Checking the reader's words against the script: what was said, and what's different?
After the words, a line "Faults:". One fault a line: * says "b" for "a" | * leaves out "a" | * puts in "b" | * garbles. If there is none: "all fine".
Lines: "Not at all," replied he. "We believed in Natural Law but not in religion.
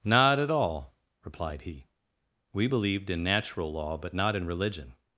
"Not at all," replied he. "We believed in Natural Law but not in religion.
Faults:
all fine